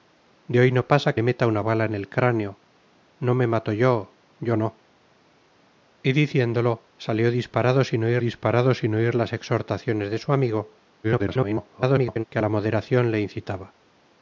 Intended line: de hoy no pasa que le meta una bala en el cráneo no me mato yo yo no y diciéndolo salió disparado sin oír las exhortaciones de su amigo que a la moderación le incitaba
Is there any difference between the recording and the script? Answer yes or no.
yes